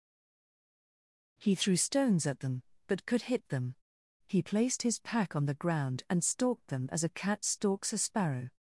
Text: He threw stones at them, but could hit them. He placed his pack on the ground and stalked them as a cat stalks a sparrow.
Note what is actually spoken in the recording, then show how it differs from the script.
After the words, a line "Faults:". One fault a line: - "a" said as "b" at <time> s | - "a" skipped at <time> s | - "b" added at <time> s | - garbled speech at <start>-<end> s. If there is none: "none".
He threw stones at them, but could hit them. He placed his pack on the ground and stalked them as a cat stalks a sparrow.
Faults:
none